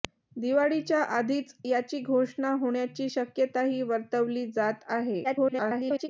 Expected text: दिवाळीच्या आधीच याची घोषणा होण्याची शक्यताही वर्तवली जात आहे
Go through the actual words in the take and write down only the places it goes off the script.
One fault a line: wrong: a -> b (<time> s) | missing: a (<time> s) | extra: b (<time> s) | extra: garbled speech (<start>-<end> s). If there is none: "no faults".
extra: garbled speech (5.2-6.1 s)